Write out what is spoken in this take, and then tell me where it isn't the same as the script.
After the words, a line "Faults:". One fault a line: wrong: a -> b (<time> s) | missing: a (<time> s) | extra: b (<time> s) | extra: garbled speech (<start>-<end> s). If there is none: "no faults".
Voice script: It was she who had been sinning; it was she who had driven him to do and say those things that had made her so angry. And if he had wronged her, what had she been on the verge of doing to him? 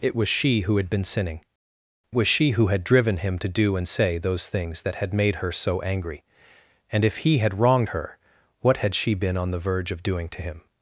It was she who had been sinning; was she who had driven him to do and say those things that had made her so angry. And if he had wronged her, what had she been on the verge of doing to him?
Faults:
missing: it (1.4 s)